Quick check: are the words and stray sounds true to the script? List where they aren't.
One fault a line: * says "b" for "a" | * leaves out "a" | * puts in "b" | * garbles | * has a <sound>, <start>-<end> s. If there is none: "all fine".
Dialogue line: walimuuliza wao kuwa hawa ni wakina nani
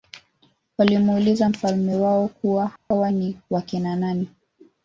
* puts in "mfalme"
* has a dropout, 2.8-2.9 s